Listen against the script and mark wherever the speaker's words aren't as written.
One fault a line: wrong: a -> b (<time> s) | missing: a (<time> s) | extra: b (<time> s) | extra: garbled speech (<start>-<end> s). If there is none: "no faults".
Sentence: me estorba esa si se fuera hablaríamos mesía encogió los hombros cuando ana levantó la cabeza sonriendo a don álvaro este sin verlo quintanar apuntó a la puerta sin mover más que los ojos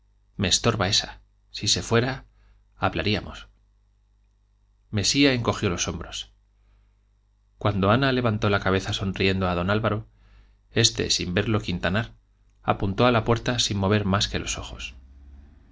no faults